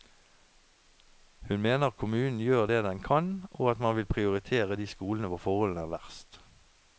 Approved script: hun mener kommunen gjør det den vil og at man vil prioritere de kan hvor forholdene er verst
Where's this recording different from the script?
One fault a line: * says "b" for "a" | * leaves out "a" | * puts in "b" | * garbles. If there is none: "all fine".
* says "kan" for "vil"
* says "skolene" for "kan"